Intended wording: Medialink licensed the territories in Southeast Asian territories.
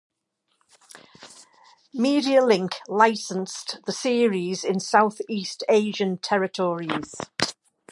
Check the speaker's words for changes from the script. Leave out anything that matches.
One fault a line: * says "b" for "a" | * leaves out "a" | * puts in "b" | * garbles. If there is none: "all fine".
* says "series" for "territories"